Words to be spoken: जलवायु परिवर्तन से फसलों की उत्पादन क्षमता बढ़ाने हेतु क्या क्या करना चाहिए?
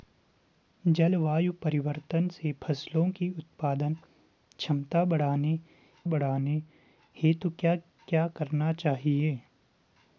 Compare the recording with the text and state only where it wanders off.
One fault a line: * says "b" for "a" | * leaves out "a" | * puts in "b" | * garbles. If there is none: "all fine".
* puts in "बढ़ाने"